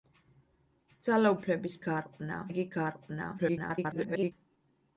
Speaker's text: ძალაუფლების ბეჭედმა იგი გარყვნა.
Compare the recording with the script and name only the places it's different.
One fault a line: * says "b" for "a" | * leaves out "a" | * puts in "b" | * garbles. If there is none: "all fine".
* says "გარყვნა" for "ბეჭედმა"
* garbles